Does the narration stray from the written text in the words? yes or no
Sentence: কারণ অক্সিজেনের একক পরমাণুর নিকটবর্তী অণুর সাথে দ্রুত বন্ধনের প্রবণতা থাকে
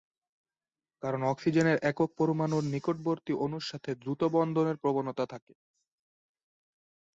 no